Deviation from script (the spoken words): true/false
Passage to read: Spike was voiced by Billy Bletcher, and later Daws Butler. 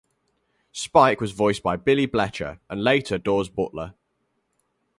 false